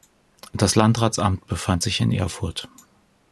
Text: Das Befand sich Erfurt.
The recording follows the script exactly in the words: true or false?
false